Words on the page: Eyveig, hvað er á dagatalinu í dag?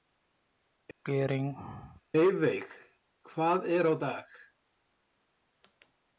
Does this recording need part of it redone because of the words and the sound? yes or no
yes